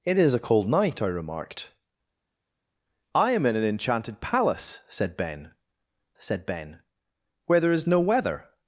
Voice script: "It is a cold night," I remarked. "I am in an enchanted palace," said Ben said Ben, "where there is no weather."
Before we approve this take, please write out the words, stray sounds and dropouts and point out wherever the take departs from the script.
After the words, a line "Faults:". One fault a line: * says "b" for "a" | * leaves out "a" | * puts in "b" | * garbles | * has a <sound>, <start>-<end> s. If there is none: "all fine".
"It is a cold night," I remarked. "I am in an enchanted palace," said Ben said Ben, "where there is no weather."
Faults:
all fine